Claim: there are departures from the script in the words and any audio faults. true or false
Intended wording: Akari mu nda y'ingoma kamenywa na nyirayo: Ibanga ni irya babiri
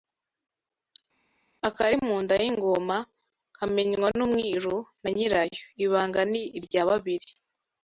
true